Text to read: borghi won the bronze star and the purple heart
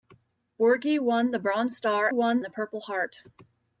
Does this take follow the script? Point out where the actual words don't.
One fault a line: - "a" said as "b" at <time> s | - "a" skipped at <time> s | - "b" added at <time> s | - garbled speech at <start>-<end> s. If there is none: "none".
- "and" said as "won" at 2.1 s